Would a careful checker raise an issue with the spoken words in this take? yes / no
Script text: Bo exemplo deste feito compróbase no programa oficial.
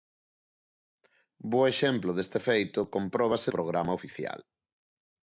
yes